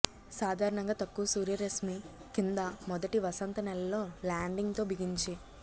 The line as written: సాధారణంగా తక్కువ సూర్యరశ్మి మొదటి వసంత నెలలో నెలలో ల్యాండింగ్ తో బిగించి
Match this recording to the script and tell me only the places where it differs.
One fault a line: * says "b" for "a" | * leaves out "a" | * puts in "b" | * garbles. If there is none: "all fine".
* puts in "కింద"
* leaves out "నెలలో"